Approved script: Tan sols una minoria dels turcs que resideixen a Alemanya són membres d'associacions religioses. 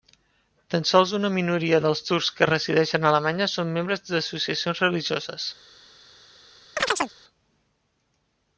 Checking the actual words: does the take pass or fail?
pass